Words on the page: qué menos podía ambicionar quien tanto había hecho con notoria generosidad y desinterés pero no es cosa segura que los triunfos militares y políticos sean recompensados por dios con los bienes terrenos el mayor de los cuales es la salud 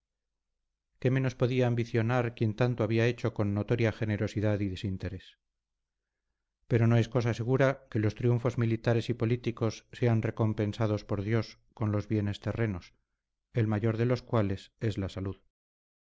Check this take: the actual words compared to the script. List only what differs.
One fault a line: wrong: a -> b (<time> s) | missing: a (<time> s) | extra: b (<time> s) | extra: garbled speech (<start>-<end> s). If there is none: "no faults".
no faults